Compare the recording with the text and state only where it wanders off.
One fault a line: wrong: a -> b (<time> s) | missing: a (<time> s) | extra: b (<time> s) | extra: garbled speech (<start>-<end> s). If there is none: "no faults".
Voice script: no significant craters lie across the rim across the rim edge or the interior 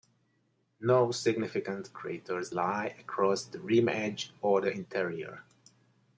missing: across the rim (3.9 s)